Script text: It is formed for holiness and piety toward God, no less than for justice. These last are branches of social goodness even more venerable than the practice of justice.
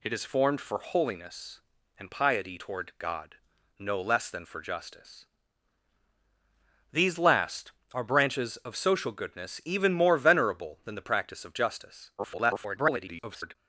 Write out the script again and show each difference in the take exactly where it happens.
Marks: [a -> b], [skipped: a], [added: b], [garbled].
It is formed for holiness and piety toward God, no less than for justice. These last are branches of social goodness even more venerable than the practice of justice. [garbled]